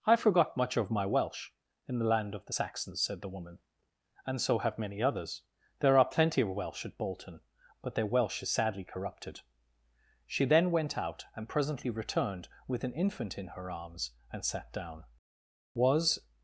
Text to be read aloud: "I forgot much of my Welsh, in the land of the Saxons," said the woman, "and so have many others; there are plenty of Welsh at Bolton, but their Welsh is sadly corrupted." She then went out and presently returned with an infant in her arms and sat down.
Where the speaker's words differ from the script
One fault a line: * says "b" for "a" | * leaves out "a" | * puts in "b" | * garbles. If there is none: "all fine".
* puts in "Was"